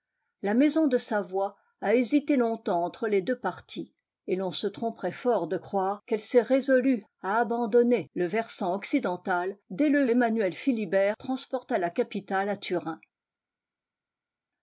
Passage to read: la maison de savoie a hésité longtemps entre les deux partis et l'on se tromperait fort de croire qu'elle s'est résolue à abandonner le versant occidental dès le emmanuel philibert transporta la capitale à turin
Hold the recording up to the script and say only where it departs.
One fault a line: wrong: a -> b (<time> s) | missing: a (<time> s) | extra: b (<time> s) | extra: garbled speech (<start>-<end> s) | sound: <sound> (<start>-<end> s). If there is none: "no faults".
no faults